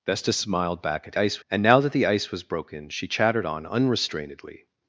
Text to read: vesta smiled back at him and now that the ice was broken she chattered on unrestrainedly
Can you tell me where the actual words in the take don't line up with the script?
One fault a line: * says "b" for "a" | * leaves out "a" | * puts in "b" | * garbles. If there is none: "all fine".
* says "ice" for "him"